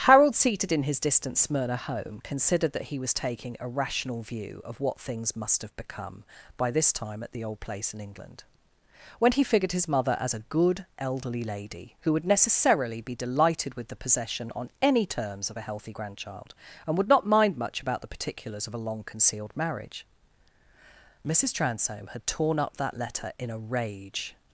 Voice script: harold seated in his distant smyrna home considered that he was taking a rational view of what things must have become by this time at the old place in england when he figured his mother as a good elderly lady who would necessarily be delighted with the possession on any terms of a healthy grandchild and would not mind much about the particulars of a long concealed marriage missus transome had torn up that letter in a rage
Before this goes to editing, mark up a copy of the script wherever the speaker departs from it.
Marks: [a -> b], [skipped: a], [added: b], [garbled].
harold seated in his distant smyrna home considered that he was taking a rational view of what things must have become by this time at the old place in england when he figured his mother as a good elderly lady who would necessarily be delighted with the possession on any terms of a healthy grandchild and would not mind much about the particulars of a long concealed marriage missus transome had torn up that letter in a rage